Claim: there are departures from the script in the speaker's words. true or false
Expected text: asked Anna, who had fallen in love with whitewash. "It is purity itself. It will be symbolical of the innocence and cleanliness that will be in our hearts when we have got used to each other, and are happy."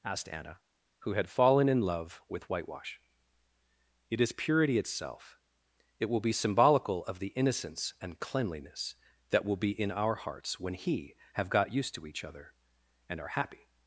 true